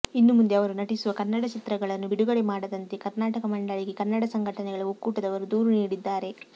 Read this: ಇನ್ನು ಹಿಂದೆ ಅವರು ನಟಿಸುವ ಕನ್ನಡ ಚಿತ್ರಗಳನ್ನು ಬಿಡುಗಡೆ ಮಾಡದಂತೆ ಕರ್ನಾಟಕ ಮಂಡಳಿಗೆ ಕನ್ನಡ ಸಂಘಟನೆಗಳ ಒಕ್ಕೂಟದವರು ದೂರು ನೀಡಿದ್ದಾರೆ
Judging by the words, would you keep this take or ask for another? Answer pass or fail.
fail